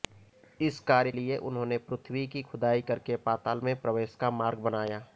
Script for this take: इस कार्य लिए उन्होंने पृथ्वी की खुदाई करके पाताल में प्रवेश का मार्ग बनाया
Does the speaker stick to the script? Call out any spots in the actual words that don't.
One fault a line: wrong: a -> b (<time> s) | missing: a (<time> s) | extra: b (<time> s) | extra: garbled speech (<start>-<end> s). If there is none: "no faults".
no faults